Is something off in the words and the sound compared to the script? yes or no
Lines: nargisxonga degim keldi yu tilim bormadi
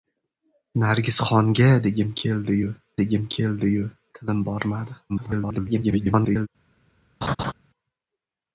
yes